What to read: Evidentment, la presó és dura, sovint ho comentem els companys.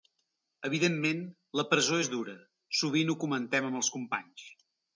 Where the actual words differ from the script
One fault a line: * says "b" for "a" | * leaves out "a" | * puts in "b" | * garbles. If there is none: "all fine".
* puts in "amb"